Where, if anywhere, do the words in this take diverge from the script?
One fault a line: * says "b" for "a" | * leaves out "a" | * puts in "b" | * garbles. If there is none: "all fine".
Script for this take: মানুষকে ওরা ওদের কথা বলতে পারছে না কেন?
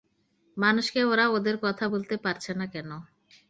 all fine